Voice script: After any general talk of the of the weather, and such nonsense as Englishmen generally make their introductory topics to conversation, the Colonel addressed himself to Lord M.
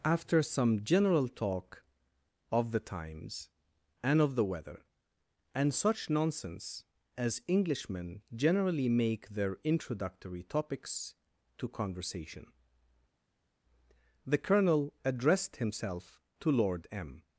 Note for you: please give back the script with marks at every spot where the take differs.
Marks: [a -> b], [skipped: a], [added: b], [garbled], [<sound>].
After [any -> some] general talk of the [added: times and] of the weather, and such nonsense as Englishmen generally make their introductory topics to conversation, the Colonel addressed himself to Lord M.